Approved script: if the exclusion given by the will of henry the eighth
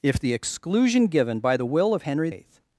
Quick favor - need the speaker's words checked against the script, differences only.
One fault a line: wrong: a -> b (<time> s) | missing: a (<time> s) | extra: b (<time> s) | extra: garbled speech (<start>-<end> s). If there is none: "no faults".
missing: the (2.3 s)